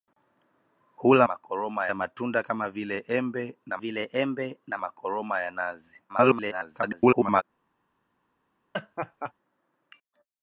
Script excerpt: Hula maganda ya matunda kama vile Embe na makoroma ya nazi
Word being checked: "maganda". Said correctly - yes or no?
no